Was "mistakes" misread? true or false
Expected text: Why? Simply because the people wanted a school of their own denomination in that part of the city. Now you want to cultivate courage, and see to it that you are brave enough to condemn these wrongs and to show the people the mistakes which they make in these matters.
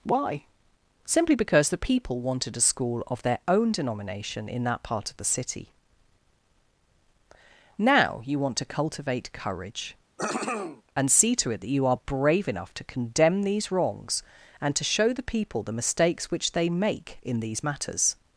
false